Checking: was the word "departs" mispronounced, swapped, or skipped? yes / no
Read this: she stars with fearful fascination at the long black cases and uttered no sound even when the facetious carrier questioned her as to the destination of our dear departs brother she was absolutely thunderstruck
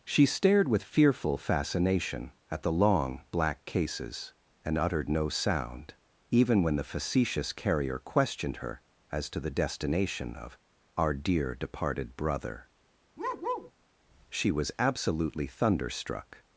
yes